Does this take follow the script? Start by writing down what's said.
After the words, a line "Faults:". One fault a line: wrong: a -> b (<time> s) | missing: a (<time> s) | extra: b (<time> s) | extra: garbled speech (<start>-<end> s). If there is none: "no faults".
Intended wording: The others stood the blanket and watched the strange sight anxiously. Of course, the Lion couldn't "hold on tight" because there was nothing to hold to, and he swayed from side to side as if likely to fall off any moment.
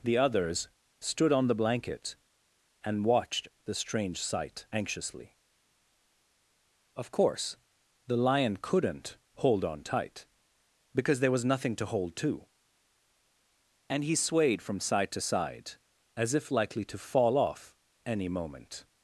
The others stood on the blanket and watched the strange sight anxiously. Of course, the Lion couldn't "hold on tight" because there was nothing to hold to, and he swayed from side to side as if likely to fall off any moment.
Faults:
extra: on (1.3 s)